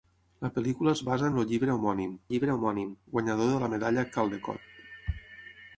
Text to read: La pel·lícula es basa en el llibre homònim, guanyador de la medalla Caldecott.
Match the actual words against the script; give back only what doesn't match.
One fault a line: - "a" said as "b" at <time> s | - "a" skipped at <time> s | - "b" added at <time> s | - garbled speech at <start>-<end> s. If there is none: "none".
- "llibre homònim" added at 2.3 s